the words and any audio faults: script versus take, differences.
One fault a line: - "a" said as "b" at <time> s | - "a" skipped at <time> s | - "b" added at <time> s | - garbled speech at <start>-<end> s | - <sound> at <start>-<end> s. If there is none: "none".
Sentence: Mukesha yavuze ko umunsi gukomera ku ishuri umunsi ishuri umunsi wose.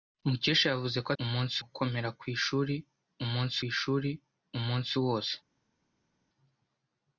none